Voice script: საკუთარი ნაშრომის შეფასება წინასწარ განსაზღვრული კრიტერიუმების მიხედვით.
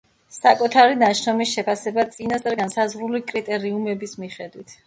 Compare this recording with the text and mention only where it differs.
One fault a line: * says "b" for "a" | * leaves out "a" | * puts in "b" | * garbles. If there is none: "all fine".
all fine